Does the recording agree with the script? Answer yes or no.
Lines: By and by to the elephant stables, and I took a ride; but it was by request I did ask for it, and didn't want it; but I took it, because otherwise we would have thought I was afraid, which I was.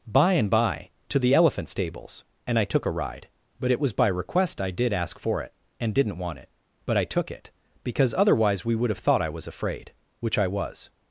yes